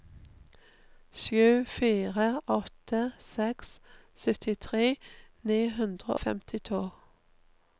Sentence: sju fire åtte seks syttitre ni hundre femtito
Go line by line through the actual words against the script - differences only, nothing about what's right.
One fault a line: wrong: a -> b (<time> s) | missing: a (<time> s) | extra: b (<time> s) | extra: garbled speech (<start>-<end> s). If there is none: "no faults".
no faults